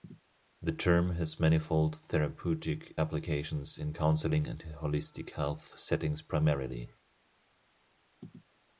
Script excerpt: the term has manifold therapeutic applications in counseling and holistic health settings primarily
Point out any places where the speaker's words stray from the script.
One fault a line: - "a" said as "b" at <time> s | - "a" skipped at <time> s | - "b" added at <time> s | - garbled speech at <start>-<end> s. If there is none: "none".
none